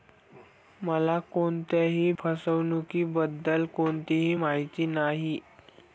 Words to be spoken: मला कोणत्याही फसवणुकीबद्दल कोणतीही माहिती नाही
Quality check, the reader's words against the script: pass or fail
pass